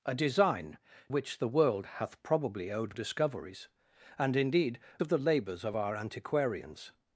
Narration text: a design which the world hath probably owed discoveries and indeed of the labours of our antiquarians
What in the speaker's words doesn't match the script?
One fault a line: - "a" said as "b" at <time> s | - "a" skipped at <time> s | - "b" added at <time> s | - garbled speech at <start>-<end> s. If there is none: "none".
none